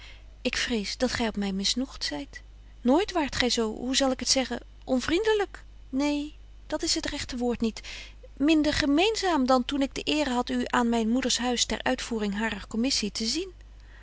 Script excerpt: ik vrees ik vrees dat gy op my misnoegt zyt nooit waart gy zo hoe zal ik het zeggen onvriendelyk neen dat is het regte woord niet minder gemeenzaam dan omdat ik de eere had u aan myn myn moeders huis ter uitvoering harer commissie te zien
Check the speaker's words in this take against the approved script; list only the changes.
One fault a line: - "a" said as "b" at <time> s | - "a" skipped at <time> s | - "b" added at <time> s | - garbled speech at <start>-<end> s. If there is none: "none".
- "ik vrees" skipped at 1.0 s
- "omdat" said as "toen" at 9.7 s
- "myn" skipped at 11.1 s